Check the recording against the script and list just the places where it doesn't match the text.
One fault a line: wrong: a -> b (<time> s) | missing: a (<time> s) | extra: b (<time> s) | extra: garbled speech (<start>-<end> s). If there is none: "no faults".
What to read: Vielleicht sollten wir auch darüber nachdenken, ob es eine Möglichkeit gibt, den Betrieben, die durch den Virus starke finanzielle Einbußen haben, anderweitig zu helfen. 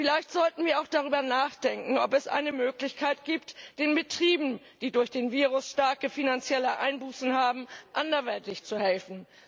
no faults